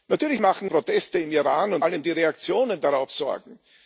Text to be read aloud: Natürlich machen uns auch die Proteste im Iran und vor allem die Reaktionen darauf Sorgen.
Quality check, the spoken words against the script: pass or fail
fail